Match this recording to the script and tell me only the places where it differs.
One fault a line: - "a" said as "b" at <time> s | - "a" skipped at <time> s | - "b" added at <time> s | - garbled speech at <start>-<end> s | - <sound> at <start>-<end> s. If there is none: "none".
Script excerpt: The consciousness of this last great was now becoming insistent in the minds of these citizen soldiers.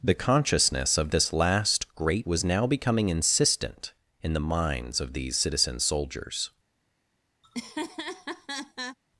- laugh at 7.4-9.0 s